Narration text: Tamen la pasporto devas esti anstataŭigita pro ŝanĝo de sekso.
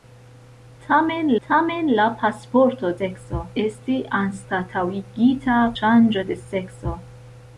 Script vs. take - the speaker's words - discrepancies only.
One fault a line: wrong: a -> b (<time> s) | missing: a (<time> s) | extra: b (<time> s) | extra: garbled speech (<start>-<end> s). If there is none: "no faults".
extra: tamen (1.5 s)
wrong: devas -> sekso (3.0 s)
missing: pro (5.6 s)